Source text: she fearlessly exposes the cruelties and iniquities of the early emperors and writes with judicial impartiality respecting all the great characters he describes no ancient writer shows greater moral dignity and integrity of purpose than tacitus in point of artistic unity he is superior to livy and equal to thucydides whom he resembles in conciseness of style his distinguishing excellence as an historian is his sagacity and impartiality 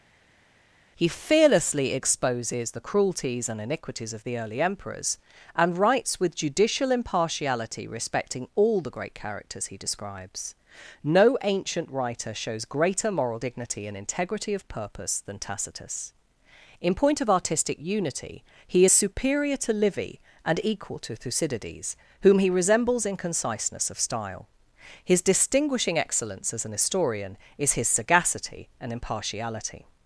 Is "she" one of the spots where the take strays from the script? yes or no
yes